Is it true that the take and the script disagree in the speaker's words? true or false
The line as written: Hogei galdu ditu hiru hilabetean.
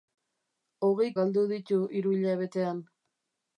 false